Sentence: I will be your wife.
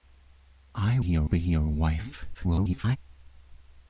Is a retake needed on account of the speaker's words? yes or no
yes